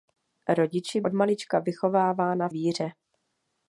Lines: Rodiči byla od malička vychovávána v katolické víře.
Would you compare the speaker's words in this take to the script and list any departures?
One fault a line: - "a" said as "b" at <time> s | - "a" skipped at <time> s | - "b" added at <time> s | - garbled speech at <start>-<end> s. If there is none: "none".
- "byla" skipped at 1.0 s
- "v katolické" skipped at 2.5 s